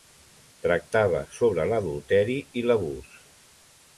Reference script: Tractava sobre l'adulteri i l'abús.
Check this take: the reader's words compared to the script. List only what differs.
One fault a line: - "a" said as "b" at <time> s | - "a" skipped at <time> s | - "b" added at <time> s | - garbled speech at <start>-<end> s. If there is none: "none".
none